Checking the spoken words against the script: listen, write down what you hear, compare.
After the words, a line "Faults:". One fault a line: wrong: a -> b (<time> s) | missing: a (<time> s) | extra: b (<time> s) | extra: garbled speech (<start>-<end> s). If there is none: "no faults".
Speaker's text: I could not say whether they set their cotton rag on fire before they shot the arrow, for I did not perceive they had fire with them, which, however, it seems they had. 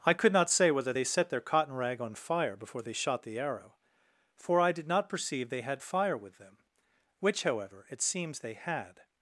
I could not say whether they set their cotton rag on fire before they shot the arrow, for I did not perceive they had fire with them, which, however, it seems they had.
Faults:
no faults